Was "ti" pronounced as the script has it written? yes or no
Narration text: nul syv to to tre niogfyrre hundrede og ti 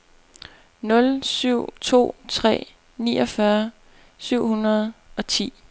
yes